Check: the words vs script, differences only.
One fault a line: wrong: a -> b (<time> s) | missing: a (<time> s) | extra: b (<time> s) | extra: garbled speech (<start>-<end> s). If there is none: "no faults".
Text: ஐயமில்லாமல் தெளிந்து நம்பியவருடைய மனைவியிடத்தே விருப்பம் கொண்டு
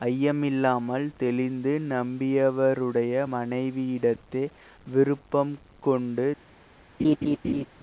no faults